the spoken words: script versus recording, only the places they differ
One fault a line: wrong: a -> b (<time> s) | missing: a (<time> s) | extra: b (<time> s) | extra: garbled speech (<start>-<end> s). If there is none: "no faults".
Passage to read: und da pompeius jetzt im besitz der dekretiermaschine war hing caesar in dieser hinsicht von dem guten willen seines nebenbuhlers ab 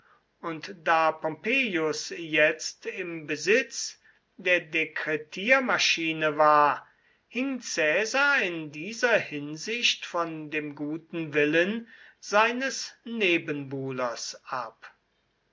no faults